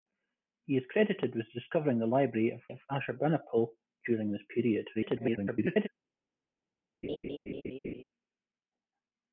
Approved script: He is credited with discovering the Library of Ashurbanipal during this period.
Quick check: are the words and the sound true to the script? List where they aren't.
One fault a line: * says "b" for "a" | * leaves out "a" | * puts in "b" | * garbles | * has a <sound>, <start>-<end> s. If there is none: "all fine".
* puts in "of"
* garbles
* has a laugh, 7.0-8.0 s